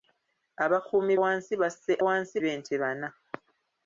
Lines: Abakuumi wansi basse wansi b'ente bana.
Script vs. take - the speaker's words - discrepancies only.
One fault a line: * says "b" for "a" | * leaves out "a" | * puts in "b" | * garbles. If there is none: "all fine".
all fine